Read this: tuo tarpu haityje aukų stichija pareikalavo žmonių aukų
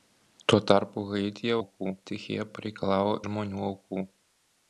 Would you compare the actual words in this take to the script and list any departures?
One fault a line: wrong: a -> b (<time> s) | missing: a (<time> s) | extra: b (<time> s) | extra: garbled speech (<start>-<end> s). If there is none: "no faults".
no faults